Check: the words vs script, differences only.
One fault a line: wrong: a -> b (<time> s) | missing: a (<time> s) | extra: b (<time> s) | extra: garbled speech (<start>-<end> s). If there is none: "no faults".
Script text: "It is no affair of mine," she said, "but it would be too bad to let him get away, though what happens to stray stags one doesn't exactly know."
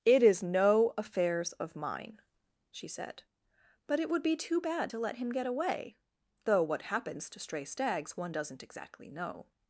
wrong: affair -> affairs (1.0 s)